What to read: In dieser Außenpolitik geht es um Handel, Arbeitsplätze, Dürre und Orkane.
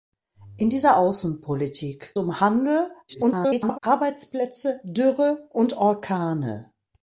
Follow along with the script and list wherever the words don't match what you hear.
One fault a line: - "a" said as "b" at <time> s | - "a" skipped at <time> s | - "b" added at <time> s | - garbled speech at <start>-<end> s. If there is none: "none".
- "geht es" skipped at 2.2 s
- garbled speech at 3.1-3.8 s